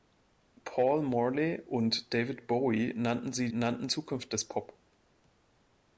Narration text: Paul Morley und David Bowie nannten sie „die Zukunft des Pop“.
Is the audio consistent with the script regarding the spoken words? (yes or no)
no